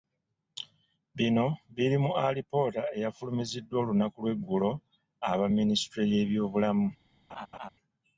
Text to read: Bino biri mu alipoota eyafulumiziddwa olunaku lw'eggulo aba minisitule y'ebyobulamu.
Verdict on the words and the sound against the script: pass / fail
fail